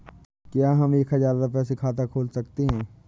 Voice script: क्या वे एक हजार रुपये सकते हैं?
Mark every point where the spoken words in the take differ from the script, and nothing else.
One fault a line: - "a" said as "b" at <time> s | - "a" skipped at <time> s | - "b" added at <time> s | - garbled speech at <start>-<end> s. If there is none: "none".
- "वे" said as "हम" at 0.7 s
- "से खाता खोल" added at 1.6 s